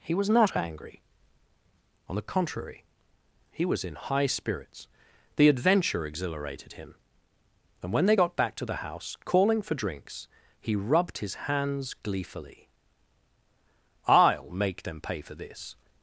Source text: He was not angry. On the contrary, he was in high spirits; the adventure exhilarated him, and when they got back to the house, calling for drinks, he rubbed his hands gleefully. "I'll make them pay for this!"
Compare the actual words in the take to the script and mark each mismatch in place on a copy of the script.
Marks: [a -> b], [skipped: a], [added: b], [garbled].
He was not angry. On the contrary, he was in high spirits; the adventure exhilarated him, and when they got back to the house, calling for drinks, he rubbed his hands gleefully. "I'll make them pay for this!"